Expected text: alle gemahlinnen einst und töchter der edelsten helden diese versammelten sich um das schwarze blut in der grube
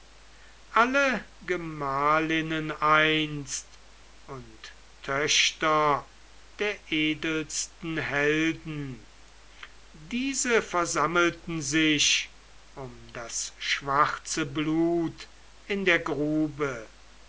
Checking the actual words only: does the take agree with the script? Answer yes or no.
yes